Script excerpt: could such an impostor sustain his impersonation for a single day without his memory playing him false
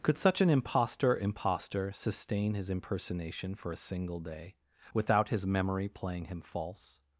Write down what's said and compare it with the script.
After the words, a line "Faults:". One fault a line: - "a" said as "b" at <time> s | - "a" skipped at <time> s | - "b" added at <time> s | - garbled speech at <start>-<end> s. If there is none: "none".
could such an impostor impostor sustain his impersonation for a single day without his memory playing him false
Faults:
- "impostor" added at 1.2 s